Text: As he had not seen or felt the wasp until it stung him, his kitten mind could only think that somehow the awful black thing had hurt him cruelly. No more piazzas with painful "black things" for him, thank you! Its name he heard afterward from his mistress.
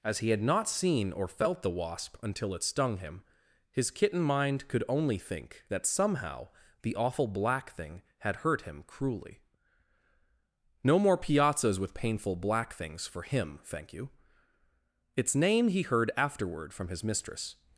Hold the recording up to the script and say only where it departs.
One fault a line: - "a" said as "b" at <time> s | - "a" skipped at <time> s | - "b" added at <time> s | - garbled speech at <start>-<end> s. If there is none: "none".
none